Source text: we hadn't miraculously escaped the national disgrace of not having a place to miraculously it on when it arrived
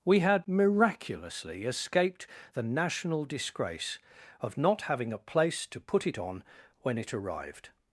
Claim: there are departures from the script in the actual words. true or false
true